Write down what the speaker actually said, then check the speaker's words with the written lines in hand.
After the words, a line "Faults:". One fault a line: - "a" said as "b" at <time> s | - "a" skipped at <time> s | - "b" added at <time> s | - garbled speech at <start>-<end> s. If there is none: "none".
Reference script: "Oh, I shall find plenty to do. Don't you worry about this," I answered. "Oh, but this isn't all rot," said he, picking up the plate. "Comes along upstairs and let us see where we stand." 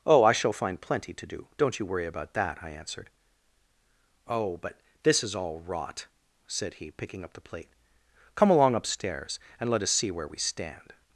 "Oh, I shall find plenty to do. Don't you worry about that," I answered. "Oh, but this is all rot," said he, picking up the plate. "Come along upstairs and let us see where we stand."
Faults:
- "this" said as "that" at 2.3 s
- "isn't" said as "is" at 5.2 s
- "Comes" said as "Come" at 8.3 s